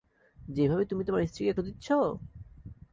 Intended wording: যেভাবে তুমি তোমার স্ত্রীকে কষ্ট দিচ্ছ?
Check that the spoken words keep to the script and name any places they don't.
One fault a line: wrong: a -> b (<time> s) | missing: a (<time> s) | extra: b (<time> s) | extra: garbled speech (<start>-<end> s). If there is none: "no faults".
missing: কষ্ট (1.5 s)